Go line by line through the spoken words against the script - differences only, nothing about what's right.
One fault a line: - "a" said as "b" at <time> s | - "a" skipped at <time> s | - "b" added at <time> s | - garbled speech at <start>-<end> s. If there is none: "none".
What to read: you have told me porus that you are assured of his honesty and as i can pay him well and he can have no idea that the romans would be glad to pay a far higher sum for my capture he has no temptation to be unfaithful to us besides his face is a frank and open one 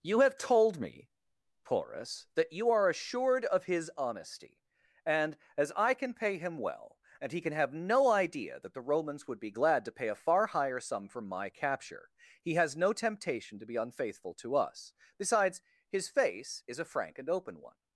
none